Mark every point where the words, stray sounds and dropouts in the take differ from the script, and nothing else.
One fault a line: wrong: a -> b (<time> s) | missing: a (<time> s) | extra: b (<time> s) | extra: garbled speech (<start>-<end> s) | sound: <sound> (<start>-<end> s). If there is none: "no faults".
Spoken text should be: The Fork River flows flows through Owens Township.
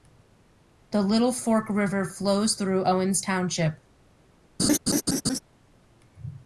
extra: Little (1.0 s)
missing: flows (2.5 s)
sound: laugh (4.6-5.4 s)